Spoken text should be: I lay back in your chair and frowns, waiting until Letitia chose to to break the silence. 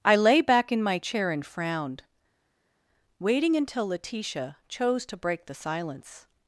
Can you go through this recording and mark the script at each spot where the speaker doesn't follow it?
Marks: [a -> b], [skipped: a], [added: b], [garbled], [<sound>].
I lay back in [your -> my] chair and [frowns, -> frowned] waiting until Letitia chose to [skipped: to] break the silence.